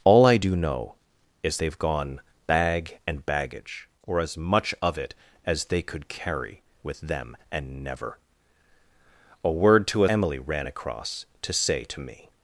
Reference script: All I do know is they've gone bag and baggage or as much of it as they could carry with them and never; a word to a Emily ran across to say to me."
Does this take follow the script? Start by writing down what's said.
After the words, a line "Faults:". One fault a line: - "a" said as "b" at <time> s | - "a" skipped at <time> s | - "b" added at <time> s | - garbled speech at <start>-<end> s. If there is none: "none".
All I do know is they've gone bag and baggage or as much of it as they could carry with them and never; a word to a Emily ran across to say to me."
Faults:
none